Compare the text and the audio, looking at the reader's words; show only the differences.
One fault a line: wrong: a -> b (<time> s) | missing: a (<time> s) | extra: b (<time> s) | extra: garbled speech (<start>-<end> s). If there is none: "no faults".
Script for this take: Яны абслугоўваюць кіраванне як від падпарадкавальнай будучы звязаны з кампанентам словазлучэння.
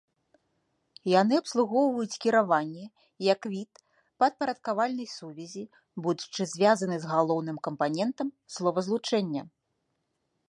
extra: сувязі (5.2 s)
extra: галоўным (7.2 s)